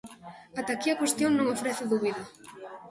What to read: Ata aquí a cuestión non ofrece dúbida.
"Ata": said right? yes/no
yes